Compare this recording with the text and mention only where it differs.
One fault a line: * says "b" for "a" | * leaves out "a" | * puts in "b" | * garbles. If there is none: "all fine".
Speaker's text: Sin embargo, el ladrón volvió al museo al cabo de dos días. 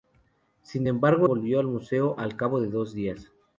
* leaves out "el ladrón"